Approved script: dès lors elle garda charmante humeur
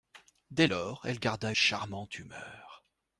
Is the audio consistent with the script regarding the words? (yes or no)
yes